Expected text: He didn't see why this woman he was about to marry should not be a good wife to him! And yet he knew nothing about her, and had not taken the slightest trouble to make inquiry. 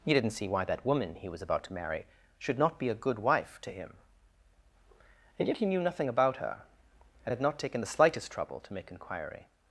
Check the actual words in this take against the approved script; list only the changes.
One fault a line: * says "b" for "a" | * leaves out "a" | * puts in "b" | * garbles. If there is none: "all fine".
* says "that" for "this"